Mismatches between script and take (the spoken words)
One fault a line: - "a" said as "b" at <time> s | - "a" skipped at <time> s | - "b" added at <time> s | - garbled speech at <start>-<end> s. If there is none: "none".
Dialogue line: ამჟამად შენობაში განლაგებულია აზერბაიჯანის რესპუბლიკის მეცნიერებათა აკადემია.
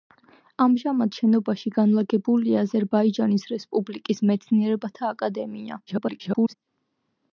- garbled speech at 5.9-6.5 s